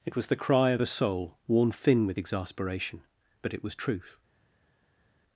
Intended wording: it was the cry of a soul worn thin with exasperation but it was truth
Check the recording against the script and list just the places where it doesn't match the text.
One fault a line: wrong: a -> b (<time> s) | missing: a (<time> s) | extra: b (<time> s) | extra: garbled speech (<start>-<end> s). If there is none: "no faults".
no faults